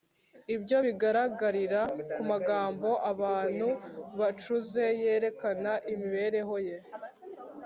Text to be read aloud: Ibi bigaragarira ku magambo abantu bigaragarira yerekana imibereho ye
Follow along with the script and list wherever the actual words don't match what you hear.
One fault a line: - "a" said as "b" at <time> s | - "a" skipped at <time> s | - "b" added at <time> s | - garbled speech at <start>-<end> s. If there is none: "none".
- "Ibi" said as "Ibyo" at 0.6 s
- "bigaragarira" said as "bacuze" at 4.2 s